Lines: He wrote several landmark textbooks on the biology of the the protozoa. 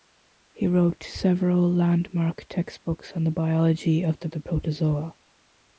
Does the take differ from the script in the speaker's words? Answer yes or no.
no